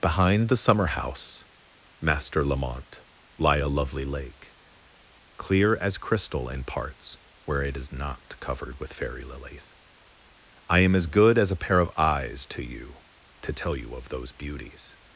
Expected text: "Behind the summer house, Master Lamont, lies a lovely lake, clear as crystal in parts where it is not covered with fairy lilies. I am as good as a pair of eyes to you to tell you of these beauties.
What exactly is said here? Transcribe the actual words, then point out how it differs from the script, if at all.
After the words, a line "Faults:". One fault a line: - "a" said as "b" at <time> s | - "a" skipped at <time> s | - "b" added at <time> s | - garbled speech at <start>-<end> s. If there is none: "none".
"Behind the summer house, Master Lamont, lie a lovely lake, clear as crystal in parts where it is not covered with fairy lilies. I am as good as a pair of eyes to you to tell you of those beauties.
Faults:
- "lies" said as "lie" at 3.4 s
- "these" said as "those" at 14.1 s